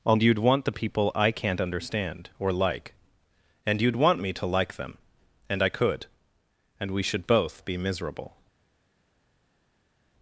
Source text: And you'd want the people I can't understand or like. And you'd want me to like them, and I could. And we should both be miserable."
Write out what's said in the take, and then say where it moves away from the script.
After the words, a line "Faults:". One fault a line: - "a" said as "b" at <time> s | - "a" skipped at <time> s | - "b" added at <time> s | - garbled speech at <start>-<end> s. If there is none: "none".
And you'd want the people I can't understand or like. And you'd want me to like them, and I could. And we should both be miserable."
Faults:
none